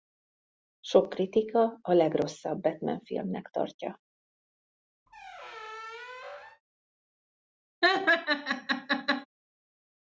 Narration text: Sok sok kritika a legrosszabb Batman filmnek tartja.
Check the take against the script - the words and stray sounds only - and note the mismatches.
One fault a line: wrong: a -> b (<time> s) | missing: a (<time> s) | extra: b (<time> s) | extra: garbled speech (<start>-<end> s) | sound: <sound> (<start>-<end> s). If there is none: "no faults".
missing: sok (1.1 s)
sound: squeak (5.1-6.6 s)
sound: laugh (7.8-9.3 s)